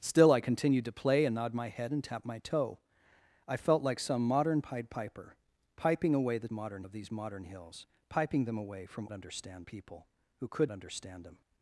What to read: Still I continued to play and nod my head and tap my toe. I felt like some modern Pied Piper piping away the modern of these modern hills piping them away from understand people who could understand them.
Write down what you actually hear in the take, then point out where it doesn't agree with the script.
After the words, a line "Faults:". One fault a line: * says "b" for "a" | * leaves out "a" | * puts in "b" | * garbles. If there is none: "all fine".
Still I continued to play and nod my head and tap my toe. I felt like some modern Pied Piper piping away the modern of these modern hills piping them away from understand people who could understand them.
Faults:
all fine